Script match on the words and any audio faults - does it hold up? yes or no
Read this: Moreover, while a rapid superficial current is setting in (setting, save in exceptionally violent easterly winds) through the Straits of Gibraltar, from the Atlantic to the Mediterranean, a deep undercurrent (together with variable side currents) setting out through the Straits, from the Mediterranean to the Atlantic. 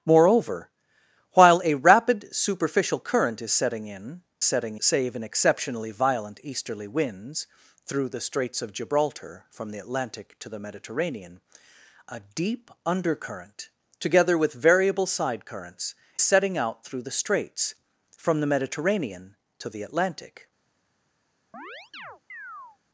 no